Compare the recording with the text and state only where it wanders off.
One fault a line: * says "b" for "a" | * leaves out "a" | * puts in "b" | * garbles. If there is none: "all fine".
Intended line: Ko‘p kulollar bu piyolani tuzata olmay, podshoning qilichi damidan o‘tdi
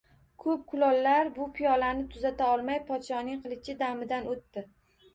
all fine